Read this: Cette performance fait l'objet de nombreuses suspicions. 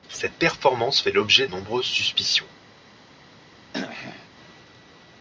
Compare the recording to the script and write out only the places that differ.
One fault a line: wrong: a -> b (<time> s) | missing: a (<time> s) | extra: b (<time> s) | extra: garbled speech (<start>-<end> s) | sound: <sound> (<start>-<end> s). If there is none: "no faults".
missing: de (1.5 s)
sound: throat clearing (3.7-4.3 s)